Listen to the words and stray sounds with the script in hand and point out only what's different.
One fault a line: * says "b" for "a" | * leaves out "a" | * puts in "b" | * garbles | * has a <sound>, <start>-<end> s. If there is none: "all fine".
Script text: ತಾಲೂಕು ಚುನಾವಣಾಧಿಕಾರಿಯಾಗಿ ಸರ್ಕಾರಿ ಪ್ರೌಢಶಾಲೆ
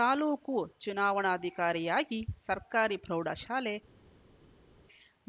all fine